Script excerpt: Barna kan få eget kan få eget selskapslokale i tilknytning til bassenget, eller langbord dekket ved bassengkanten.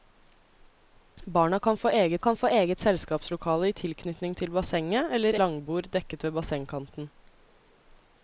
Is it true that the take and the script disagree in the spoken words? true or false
false